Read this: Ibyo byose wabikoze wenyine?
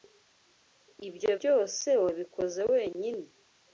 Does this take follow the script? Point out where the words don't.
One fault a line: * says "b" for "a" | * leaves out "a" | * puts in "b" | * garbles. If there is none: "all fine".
all fine